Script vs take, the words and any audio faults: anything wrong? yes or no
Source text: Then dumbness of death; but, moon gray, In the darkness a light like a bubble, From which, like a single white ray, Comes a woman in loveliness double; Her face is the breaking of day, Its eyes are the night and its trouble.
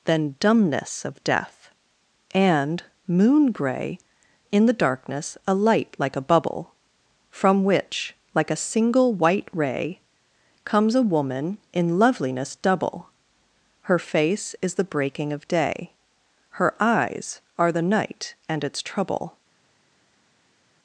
yes